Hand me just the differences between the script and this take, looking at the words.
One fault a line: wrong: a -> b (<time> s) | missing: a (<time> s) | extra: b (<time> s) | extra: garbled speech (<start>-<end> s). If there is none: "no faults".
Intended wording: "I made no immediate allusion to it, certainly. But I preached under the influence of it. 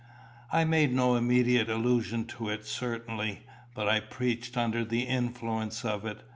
no faults